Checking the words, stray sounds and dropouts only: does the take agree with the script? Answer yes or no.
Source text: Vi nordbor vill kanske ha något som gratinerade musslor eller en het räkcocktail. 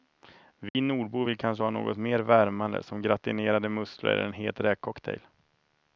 no